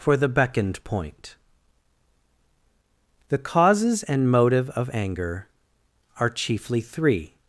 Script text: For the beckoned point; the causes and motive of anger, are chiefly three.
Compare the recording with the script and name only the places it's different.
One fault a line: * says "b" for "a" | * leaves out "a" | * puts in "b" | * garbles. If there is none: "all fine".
all fine